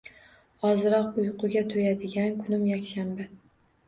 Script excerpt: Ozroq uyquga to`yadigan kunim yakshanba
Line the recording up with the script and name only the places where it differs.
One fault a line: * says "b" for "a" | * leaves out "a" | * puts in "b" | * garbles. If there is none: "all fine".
all fine